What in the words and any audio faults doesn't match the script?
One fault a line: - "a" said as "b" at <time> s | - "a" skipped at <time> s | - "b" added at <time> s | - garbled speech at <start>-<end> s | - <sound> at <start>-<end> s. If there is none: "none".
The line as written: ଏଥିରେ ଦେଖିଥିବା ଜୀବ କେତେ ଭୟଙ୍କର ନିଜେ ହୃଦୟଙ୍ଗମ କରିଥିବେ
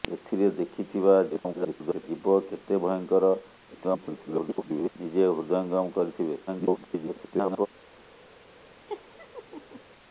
- garbled speech at 1.3-2.0 s
- garbled speech at 3.7-4.9 s
- garbled speech at 6.5-7.7 s
- laugh at 8.9-9.8 s